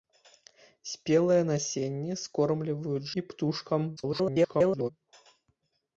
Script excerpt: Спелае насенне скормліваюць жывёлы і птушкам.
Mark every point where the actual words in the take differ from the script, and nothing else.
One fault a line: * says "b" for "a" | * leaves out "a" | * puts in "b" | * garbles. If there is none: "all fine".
* leaves out "жывёлы"
* garbles